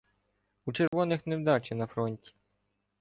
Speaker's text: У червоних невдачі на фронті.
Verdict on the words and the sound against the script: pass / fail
fail